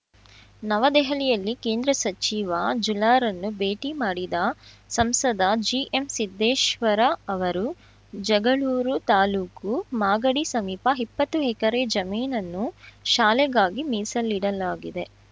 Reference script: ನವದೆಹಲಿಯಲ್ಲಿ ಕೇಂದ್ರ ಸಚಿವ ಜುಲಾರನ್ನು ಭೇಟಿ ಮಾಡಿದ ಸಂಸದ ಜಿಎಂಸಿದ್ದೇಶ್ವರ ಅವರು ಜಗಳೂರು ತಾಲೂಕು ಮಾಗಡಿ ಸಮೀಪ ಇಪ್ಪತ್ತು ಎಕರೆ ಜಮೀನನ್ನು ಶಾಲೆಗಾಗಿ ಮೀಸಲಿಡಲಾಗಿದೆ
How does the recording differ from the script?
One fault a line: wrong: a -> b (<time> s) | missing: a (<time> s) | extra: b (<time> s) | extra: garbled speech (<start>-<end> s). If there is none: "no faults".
no faults